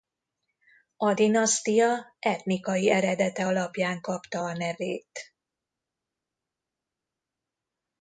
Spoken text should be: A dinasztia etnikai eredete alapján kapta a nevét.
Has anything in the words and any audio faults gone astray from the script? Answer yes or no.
no